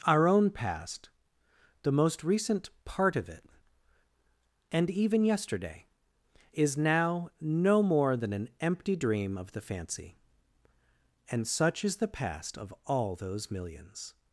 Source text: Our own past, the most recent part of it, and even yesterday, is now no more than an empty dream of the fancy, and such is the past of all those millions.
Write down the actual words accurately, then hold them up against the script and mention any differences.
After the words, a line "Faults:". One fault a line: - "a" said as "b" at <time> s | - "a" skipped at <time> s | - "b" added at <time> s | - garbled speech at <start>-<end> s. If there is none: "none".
Our own past, the most recent part of it, and even yesterday, is now no more than an empty dream of the fancy, and such is the past of all those millions.
Faults:
none